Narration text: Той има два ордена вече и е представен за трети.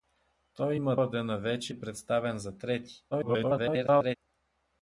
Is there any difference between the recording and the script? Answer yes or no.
yes